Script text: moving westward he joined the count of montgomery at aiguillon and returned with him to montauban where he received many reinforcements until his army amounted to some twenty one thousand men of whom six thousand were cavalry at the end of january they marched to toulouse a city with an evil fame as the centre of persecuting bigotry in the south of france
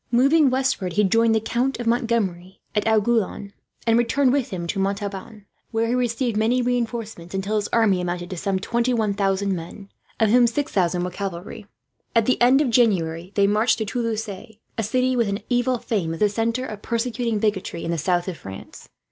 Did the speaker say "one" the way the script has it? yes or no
yes